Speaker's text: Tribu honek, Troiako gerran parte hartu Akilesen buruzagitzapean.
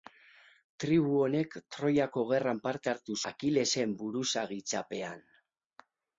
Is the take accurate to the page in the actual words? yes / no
yes